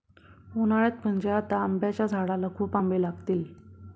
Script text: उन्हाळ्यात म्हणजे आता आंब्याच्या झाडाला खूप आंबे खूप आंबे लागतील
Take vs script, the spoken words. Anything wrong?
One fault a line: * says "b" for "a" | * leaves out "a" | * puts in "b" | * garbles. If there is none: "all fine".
* leaves out "खूप आंबे"